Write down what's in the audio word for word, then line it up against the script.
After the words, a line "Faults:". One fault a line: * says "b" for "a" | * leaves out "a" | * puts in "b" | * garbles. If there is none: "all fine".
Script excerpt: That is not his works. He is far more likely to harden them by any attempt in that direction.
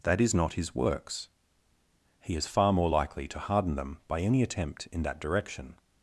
That is not his works. He is far more likely to harden them by any attempt in that direction.
Faults:
all fine